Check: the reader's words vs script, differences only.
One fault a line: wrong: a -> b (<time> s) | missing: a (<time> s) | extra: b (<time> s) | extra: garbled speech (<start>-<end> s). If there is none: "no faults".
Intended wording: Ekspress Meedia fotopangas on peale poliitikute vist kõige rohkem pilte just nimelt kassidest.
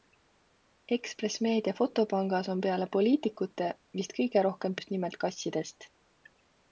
missing: pilte (4.8 s)